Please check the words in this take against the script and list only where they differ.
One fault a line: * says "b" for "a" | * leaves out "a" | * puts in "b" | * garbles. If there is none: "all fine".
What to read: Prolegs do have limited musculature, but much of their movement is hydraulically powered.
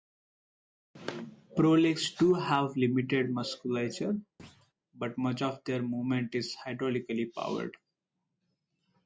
all fine